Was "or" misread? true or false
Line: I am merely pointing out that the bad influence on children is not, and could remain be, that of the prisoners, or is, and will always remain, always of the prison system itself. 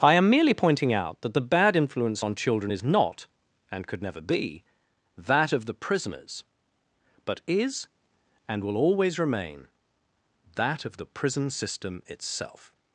true